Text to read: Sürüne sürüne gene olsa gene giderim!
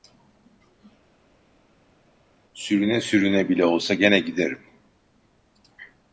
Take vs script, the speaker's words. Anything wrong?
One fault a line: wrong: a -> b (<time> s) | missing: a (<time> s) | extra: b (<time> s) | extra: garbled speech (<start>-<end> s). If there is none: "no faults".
wrong: gene -> bile (3.5 s)